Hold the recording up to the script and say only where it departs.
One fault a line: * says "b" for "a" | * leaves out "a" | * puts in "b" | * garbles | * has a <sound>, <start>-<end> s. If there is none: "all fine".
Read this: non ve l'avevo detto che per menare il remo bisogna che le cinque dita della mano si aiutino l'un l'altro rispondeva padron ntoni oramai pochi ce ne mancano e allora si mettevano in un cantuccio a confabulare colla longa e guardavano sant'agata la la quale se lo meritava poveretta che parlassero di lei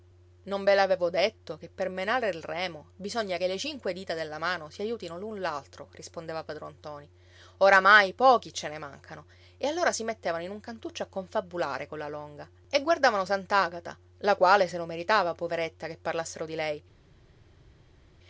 * leaves out "la"